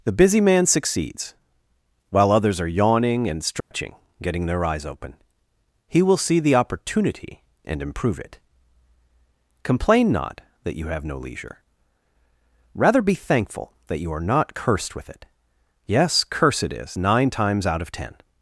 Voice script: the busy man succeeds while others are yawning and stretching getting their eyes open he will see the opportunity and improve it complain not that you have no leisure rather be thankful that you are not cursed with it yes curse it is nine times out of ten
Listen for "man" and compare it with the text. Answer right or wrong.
right